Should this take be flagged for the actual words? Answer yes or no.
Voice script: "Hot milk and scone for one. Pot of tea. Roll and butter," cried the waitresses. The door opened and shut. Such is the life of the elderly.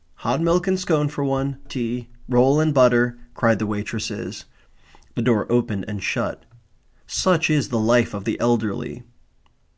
yes